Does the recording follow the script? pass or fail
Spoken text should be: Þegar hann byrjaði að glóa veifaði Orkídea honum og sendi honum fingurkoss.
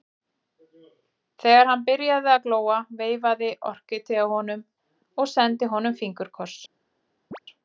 pass